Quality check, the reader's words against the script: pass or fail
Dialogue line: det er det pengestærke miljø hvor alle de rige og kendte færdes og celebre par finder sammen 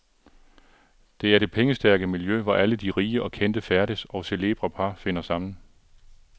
pass